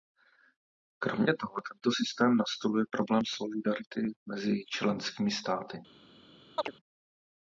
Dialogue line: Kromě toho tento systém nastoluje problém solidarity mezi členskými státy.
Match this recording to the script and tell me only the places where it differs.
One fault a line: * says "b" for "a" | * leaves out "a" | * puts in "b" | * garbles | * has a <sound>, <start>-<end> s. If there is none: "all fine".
* has a chirp, 6.6-6.7 s